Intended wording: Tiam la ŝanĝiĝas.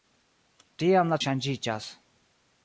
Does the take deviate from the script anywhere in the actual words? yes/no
no